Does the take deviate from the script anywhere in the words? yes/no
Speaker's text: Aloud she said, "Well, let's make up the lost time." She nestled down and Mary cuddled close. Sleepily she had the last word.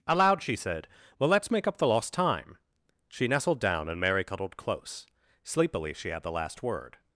no